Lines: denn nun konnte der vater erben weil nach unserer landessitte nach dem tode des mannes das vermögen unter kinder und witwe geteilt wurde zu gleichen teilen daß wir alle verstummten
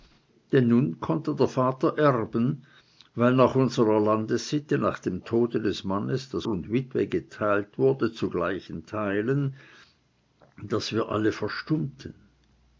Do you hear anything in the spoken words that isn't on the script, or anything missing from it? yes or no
yes